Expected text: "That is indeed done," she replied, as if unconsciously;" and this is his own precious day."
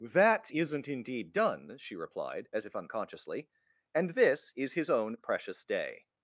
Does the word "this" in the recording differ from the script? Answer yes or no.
no